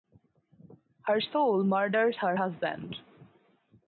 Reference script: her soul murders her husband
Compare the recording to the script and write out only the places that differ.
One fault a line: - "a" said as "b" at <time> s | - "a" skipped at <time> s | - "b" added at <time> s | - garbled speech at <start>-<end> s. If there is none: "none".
none